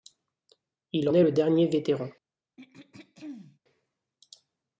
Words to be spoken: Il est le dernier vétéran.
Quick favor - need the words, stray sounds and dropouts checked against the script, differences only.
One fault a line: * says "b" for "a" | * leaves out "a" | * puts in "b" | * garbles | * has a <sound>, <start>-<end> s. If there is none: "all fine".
* has a throat clearing, 2.6-3.6 s